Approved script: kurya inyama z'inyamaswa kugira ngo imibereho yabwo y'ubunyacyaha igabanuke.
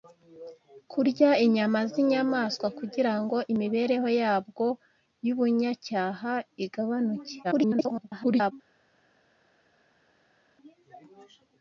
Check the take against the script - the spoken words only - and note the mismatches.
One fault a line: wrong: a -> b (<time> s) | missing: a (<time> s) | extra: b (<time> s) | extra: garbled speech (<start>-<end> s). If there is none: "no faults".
extra: garbled speech (7.4-8.5 s)